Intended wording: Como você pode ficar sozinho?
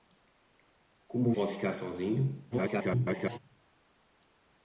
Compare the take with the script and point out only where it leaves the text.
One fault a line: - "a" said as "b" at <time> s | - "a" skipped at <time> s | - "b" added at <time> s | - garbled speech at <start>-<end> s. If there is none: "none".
- "você" skipped at 1.3 s
- garbled speech at 2.5-3.4 s